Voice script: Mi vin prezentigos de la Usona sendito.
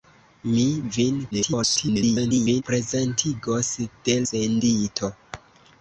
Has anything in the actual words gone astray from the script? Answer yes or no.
yes